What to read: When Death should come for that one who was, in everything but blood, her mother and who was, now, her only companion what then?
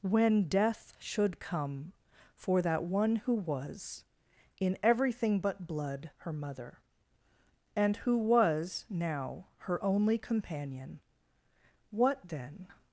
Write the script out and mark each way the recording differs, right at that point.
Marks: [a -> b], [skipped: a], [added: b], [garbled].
When Death should come for that one who was, in everything but blood, her mother and who was, now, her only companion what then?